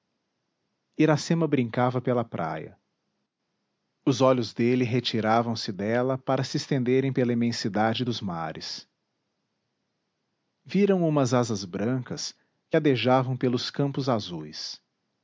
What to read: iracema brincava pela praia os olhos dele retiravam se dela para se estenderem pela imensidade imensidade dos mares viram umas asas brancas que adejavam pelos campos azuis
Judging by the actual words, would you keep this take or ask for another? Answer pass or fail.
fail